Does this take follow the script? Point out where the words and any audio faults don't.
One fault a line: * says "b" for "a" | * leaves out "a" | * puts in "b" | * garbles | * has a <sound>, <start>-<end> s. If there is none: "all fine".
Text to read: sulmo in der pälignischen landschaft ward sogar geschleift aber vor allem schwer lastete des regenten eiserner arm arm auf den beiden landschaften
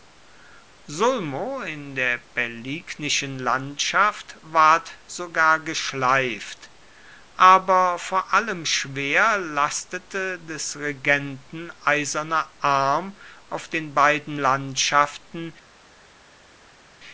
* leaves out "arm"